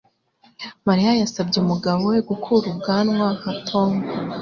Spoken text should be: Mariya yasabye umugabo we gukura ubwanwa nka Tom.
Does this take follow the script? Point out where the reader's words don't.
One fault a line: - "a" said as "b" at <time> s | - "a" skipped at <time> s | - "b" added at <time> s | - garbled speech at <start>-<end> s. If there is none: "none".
none